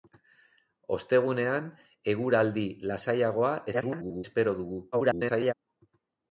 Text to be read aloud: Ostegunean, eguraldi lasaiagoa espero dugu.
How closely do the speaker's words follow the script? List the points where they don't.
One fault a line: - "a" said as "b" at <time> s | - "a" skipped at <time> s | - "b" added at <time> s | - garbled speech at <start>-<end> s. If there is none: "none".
- garbled speech at 3.7-4.2 s
- garbled speech at 4.9-5.5 s